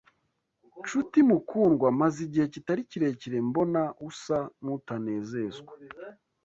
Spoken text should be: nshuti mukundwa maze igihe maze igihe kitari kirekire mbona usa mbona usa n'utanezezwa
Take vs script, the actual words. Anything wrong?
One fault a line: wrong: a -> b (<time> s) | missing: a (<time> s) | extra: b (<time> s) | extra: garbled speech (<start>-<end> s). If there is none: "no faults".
missing: maze igihe (2.4 s)
missing: mbona usa (4.4 s)